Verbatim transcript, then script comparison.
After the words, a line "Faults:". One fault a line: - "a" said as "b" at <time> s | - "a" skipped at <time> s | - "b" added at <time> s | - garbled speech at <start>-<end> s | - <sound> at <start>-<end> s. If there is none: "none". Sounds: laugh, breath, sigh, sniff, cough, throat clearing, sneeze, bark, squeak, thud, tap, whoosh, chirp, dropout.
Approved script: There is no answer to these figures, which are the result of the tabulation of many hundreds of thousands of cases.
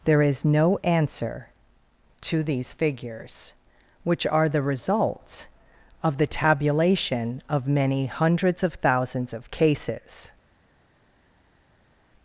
There is no answer to these figures, which are the results of the tabulation of many hundreds of thousands of cases.
Faults:
- "result" said as "results" at 4.6 s